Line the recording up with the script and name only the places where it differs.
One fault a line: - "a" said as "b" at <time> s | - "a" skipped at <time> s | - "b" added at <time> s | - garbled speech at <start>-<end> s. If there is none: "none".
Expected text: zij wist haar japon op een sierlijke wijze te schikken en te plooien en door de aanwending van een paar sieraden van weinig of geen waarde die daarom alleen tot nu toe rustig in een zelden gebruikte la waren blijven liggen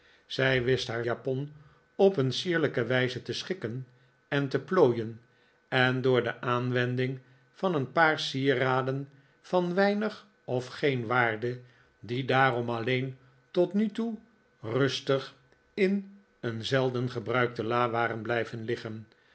none